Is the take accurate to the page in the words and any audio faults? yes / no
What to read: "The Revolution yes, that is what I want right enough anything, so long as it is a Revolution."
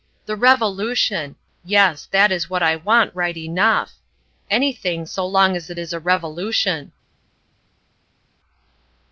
yes